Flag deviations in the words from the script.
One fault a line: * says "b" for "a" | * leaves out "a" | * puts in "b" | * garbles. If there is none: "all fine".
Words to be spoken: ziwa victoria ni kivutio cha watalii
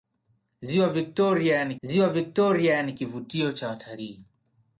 * puts in "ziwa victoria ni"